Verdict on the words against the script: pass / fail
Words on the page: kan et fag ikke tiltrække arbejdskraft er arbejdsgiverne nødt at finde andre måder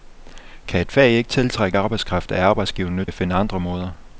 pass